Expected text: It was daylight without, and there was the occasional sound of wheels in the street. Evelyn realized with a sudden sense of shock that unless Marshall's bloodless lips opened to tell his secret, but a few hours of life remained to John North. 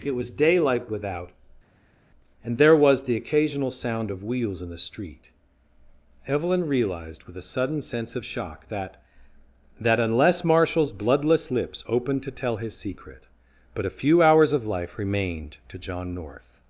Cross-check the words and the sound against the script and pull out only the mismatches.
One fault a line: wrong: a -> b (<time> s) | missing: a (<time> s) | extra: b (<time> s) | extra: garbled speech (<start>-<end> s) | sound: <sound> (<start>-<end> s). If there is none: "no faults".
extra: that (9.8 s)